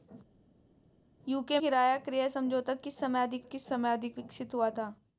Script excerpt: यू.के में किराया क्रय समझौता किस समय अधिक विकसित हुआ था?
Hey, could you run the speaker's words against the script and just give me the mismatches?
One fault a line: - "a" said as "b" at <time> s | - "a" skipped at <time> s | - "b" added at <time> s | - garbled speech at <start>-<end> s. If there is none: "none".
- "में" skipped at 1.6 s
- "किस समय अधिक" added at 3.4 s